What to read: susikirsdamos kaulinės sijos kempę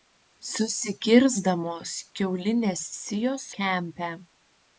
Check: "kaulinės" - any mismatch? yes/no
no